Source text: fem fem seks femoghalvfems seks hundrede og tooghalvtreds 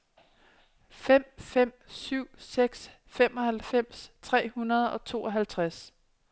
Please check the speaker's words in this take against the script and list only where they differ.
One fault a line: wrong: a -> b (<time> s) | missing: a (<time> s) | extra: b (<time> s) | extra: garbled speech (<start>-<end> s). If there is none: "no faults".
extra: syv (1.9 s)
wrong: seks -> tre (4.2 s)